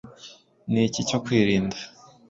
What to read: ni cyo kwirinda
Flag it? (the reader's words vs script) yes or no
yes